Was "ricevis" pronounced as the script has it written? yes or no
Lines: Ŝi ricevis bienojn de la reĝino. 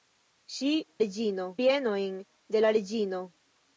no